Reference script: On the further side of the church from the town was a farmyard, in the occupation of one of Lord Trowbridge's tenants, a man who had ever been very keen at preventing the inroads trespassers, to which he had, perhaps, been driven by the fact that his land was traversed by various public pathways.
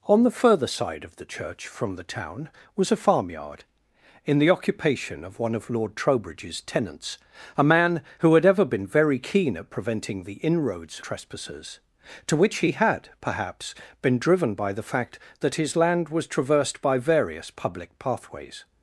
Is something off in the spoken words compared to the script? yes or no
no